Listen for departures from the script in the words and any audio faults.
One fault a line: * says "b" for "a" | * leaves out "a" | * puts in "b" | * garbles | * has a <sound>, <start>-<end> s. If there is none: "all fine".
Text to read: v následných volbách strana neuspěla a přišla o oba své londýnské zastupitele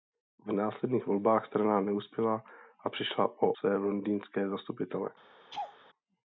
* leaves out "oba"
* has a laugh, 5.5-5.8 s